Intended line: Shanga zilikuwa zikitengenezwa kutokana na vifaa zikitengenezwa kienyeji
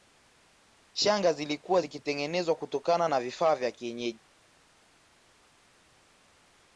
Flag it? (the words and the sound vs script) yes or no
yes